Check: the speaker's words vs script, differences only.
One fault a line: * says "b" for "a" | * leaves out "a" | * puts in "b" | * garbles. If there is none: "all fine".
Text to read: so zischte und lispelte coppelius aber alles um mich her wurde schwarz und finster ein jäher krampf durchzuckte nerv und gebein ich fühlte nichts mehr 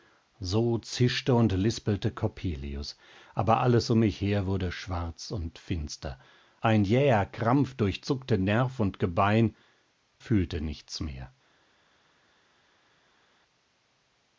* leaves out "ich"